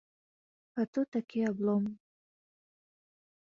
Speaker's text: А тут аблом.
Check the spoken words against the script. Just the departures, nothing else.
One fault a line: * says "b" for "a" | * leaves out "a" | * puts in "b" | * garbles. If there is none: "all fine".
* puts in "такі"